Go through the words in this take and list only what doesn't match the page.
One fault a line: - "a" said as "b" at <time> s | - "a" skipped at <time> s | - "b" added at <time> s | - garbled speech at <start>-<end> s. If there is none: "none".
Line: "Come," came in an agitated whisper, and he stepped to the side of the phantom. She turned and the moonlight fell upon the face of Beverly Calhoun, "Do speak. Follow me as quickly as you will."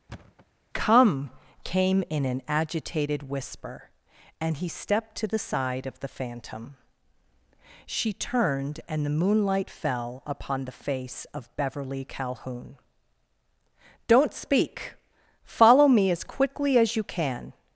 - "Do" said as "Don't" at 14.1 s
- "will" said as "can" at 17.0 s